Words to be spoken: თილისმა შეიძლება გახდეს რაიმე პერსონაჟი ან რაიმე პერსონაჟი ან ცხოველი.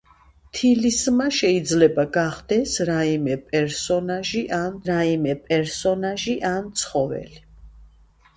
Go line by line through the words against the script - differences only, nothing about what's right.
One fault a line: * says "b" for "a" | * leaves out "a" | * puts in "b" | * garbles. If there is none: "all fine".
all fine